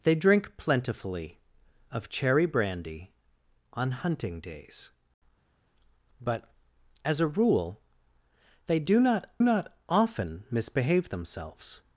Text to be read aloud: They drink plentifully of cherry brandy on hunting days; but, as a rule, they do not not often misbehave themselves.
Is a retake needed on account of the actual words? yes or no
no